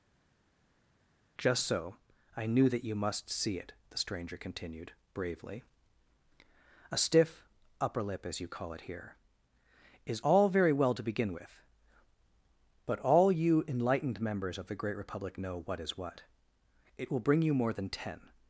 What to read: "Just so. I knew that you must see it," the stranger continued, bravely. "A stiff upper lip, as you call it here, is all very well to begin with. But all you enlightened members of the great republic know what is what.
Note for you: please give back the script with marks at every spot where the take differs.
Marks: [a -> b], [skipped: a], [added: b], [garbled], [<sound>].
"Just so. I knew that you must see it," the stranger continued, bravely. "A stiff upper lip, as you call it here, is all very well to begin with. But all you enlightened members of the great republic know what is what. [added: It will bring you more than ten]